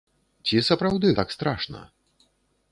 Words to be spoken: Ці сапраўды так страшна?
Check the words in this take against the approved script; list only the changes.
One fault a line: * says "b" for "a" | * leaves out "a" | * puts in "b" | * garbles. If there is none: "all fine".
all fine